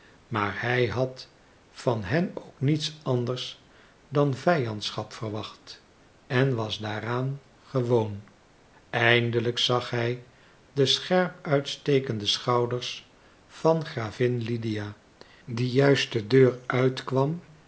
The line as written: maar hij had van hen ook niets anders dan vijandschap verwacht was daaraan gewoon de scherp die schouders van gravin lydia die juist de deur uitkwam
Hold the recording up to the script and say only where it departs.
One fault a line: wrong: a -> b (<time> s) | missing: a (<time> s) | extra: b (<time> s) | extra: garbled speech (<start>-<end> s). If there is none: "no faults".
extra: en (6.3 s)
extra: eindelijk zag hij (8.9 s)
wrong: die -> uitstekende (11.5 s)